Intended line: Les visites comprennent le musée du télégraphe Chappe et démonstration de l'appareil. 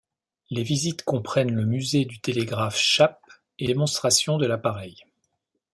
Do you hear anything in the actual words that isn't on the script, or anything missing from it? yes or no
no